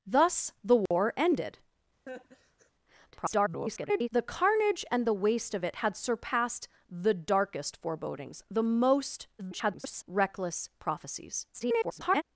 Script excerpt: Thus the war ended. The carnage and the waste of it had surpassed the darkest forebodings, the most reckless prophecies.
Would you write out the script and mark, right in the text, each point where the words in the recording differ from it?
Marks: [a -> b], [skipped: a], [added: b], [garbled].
Thus the war ended. [garbled] The carnage and the waste of it had surpassed the darkest forebodings, the most [garbled] reckless prophecies. [garbled]